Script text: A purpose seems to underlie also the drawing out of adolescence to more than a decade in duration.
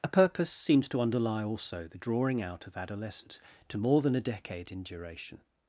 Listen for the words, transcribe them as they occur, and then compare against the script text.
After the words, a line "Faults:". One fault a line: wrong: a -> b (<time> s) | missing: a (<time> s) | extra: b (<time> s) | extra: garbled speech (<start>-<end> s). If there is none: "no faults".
A purpose seems to underlie also the drawing out of adolescence to more than a decade in duration.
Faults:
no faults